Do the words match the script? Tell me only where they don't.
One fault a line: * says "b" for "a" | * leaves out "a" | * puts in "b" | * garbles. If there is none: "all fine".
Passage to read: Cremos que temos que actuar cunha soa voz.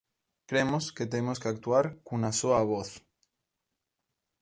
all fine